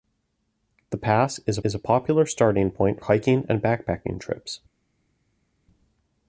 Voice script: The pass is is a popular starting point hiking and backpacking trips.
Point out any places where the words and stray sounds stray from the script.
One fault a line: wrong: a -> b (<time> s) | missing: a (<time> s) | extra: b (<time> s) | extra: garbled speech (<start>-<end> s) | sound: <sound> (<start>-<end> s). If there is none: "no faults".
no faults